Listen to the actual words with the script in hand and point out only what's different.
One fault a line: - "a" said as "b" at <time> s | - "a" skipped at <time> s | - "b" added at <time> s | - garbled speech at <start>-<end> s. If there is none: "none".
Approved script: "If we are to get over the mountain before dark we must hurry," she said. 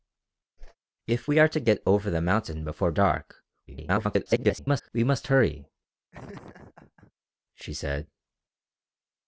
- garbled speech at 3.7-4.9 s